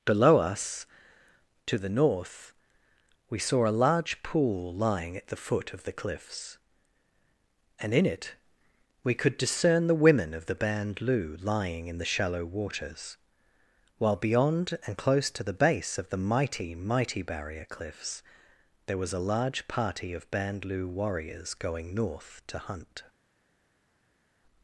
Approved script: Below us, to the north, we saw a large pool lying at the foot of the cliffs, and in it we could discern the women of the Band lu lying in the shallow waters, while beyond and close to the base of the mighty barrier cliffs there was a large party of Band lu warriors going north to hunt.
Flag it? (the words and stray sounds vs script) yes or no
yes